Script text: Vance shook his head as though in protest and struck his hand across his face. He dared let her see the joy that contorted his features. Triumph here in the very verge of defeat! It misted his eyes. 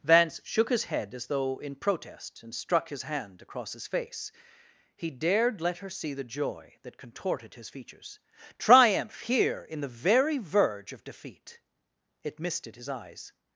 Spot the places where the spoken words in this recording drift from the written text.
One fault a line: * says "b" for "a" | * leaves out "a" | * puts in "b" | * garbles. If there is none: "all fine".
all fine